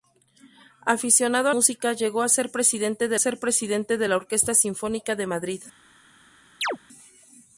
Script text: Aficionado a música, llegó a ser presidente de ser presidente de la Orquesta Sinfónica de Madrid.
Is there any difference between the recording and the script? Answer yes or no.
no